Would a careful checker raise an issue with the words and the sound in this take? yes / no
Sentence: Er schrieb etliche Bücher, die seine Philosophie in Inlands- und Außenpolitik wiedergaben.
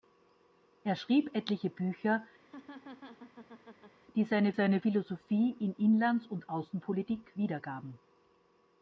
yes